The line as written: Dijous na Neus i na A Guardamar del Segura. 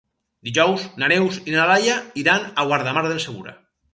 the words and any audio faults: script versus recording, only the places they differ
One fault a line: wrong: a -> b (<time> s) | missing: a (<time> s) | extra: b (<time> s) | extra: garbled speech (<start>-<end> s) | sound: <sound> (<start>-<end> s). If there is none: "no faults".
extra: Laia iran (1.7 s)